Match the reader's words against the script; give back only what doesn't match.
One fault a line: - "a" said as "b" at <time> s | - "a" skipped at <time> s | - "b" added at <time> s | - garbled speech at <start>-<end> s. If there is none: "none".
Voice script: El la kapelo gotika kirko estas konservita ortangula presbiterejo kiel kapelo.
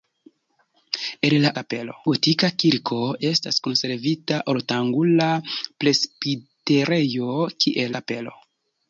none